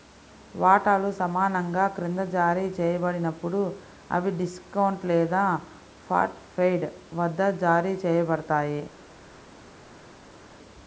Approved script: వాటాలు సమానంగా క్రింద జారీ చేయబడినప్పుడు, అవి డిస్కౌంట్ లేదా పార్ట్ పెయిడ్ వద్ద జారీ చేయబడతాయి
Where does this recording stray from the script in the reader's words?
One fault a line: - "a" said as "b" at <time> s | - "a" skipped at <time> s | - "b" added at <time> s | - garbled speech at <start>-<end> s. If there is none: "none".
none